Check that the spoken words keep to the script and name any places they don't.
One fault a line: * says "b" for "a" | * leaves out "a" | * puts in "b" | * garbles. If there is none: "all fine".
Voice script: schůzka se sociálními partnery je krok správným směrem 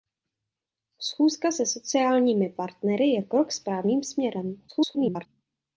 * garbles